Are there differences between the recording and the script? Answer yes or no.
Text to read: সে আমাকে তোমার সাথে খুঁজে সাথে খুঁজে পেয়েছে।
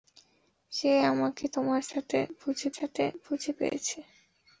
no